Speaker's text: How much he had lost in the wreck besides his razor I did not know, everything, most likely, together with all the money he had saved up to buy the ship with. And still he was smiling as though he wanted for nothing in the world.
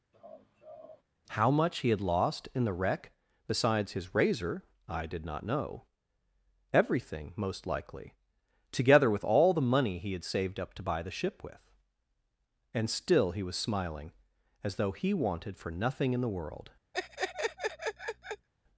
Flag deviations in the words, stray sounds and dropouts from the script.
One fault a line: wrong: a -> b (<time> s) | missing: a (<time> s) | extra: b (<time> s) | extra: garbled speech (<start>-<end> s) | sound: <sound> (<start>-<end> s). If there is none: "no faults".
sound: laugh (0.1-1.0 s)
sound: laugh (16.9-18.5 s)